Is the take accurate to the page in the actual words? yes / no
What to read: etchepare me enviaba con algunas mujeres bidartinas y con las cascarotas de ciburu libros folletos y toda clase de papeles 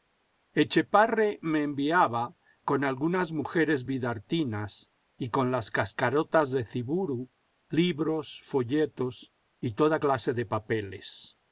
yes